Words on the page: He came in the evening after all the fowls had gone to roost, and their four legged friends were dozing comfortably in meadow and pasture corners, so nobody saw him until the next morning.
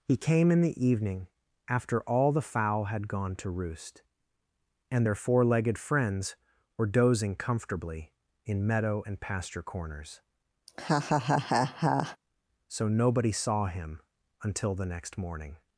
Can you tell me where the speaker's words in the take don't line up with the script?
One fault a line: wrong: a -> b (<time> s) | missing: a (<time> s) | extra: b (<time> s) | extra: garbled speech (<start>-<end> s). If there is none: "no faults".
wrong: fowls -> fowl (2.4 s)